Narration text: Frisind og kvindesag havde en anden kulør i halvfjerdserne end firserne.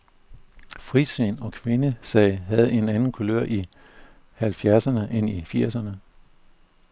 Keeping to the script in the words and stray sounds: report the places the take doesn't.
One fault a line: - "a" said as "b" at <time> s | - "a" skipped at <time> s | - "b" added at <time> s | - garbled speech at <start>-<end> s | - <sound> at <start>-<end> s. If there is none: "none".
- "i" added at 5.3 s